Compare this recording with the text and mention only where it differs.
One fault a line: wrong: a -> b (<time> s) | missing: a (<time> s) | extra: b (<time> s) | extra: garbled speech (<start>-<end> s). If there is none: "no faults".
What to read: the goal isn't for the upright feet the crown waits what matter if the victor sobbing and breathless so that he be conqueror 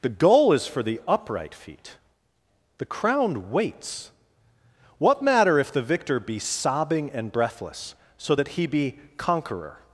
wrong: isn't -> is (0.5 s)
extra: be (6.2 s)